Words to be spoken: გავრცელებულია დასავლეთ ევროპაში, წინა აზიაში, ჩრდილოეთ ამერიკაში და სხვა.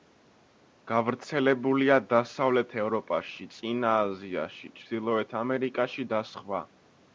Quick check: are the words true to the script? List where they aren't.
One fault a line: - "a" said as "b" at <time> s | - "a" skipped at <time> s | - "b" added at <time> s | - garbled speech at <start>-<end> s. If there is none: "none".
none